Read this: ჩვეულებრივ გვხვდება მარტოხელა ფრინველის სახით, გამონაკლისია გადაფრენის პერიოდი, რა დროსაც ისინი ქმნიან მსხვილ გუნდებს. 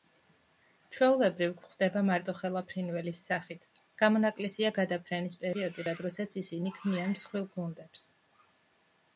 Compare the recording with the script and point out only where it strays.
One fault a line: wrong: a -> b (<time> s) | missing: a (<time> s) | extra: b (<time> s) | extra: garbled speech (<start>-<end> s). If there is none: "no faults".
no faults